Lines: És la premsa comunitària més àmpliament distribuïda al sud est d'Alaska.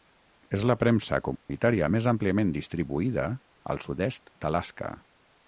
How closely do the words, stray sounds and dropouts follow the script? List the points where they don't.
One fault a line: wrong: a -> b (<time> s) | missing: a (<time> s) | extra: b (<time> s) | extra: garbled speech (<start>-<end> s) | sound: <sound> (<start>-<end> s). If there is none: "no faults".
sound: dropout (1.4-1.5 s)